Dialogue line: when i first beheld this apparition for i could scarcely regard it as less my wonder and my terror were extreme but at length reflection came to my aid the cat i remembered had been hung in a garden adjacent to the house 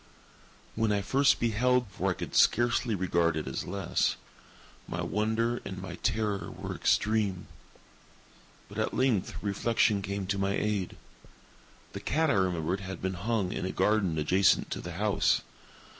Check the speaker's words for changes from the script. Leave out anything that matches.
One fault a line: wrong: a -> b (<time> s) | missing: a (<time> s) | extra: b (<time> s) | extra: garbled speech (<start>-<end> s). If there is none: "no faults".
missing: this apparition (1.9 s)